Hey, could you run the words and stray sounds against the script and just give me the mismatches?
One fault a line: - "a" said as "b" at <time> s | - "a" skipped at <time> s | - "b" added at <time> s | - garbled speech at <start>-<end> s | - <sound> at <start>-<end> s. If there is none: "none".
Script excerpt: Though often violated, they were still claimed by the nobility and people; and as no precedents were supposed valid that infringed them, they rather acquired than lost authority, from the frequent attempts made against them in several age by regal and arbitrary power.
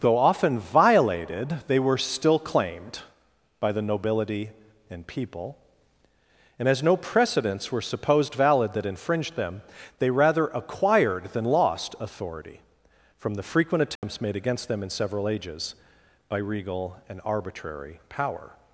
- dropout at 14.0-14.0 s
- "age" said as "ages" at 15.3 s